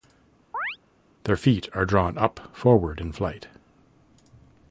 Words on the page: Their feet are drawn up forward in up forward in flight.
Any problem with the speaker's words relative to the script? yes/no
yes